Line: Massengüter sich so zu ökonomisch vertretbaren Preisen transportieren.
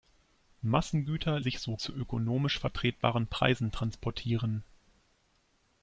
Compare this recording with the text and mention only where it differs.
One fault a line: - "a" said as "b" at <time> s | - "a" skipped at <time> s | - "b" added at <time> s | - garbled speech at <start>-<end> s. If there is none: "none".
none